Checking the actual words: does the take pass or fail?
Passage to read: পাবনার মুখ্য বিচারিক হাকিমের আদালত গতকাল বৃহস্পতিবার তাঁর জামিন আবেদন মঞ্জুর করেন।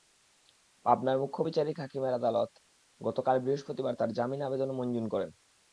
pass